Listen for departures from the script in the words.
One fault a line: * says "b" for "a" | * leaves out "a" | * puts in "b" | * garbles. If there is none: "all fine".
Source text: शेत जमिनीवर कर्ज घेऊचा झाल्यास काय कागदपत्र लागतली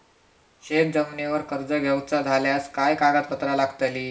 all fine